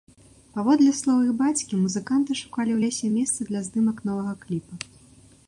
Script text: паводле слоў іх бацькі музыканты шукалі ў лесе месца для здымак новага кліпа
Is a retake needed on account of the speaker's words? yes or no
no